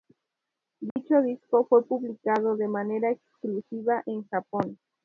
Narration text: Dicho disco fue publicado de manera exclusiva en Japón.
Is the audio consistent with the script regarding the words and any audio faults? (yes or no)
no